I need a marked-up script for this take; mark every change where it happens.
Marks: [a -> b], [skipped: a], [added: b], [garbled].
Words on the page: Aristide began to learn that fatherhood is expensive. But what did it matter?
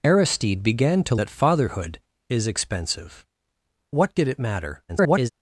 Aristide began to [skipped: learn] that fatherhood is expensive. [skipped: But] what did it matter? [garbled]